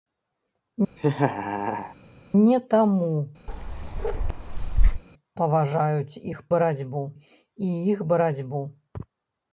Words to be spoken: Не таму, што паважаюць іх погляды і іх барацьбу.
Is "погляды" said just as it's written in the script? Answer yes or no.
no